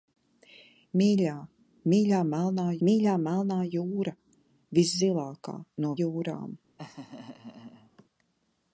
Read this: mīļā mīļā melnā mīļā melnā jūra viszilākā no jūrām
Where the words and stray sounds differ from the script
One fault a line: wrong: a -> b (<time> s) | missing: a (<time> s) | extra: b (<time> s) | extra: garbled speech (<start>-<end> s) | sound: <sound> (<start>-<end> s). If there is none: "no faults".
sound: laugh (6.8-8.0 s)